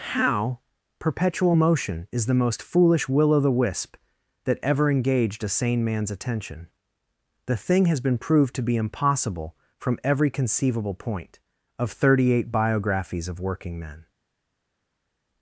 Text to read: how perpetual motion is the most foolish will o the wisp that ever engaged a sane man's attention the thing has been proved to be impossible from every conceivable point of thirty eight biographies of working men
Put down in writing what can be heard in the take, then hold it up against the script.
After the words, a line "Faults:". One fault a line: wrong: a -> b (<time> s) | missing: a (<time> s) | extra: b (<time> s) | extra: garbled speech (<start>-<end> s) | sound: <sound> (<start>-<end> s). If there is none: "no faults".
how perpetual motion is the most foolish will o the wisp that ever engaged a sane man's attention the thing has been proved to be impossible from every conceivable point of thirty eight biographies of working men
Faults:
no faults